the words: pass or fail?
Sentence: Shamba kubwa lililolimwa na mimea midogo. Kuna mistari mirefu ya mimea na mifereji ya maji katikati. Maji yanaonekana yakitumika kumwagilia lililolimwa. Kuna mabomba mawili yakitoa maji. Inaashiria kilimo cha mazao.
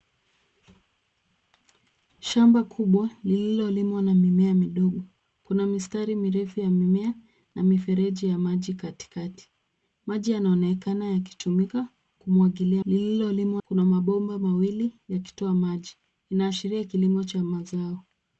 pass